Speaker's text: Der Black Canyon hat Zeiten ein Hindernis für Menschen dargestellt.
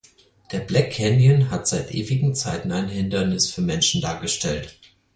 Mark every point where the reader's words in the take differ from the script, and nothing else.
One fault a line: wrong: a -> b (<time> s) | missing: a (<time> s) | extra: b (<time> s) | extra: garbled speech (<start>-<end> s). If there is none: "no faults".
extra: seit ewigen (1.7 s)